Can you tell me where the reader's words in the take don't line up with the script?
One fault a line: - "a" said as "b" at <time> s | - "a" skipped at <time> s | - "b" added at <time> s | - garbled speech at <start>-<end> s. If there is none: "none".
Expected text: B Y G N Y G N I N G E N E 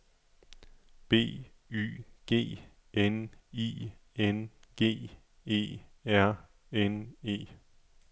- "Y G N" skipped at 3.3 s
- "R" added at 6.0 s